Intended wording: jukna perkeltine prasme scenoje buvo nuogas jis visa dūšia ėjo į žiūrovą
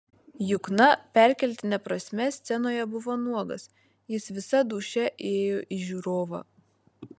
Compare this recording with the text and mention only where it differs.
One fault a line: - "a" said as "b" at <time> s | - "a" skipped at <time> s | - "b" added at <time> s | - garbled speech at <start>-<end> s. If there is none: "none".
none